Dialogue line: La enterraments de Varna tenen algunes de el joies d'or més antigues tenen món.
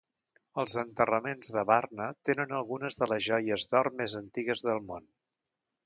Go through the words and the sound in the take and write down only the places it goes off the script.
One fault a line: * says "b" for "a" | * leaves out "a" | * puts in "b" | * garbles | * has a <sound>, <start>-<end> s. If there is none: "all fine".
* says "Els" for "La"
* says "les" for "el"
* says "del" for "tenen"